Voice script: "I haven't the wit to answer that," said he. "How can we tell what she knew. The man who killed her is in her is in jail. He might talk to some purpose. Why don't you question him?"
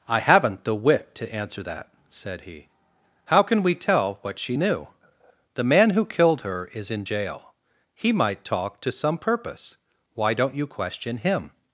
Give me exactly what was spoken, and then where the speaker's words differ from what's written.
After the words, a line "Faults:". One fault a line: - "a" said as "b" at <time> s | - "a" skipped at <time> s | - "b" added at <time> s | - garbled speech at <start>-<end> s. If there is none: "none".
"I haven't the wit to answer that," said he. "How can we tell what she knew. The man who killed her is in jail. He might talk to some purpose. Why don't you question him?"
Faults:
- "her is in" skipped at 7.1 s